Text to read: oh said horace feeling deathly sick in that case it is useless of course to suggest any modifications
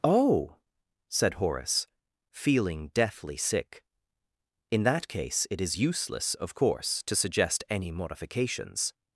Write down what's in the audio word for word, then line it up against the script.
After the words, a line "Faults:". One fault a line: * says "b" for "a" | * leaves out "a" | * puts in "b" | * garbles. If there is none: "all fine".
oh said horace feeling deathly sick in that case it is useless of course to suggest any modifications
Faults:
all fine